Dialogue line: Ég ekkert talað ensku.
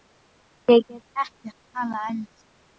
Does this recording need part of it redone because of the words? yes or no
yes